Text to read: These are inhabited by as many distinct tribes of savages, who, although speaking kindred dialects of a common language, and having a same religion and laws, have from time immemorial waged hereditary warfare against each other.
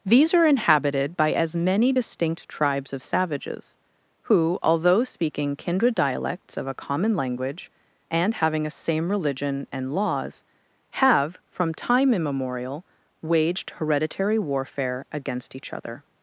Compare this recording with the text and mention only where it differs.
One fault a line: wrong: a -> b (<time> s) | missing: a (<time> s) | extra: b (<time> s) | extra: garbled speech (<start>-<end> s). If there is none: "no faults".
no faults